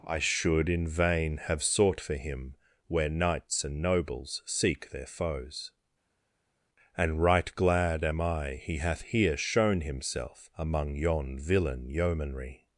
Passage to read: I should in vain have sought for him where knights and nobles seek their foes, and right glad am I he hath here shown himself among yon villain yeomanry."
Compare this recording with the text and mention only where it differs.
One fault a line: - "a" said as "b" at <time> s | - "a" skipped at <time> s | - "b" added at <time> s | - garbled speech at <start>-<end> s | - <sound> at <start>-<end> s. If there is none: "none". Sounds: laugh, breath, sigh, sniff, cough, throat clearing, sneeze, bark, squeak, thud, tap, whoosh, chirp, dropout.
none